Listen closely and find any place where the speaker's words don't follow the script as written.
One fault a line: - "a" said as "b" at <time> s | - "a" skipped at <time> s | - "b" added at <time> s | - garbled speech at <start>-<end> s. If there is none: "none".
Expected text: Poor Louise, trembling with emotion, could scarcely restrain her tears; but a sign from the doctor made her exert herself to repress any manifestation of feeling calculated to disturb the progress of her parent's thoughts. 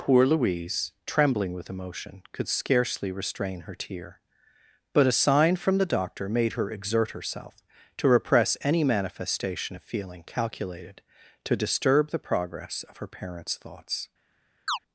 - "tears" said as "tear" at 3.8 s